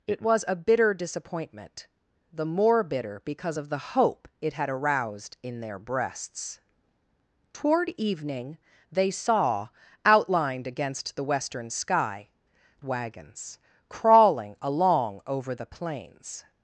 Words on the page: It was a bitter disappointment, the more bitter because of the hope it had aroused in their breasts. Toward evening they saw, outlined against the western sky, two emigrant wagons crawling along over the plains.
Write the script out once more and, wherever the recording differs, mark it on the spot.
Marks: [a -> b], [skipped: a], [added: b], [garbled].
It was a bitter disappointment, the more bitter because of the hope it had aroused in their breasts. Toward evening they saw, outlined against the western sky, [skipped: two emigrant] wagons crawling along over the plains.